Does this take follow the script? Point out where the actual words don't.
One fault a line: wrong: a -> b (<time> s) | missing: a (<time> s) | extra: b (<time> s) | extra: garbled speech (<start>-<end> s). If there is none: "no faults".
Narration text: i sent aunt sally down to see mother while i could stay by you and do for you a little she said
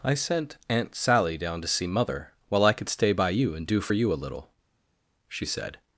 no faults